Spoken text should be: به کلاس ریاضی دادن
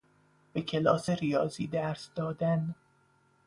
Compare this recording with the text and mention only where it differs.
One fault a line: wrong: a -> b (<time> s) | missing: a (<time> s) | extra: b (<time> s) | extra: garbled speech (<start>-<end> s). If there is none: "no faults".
extra: درس (1.7 s)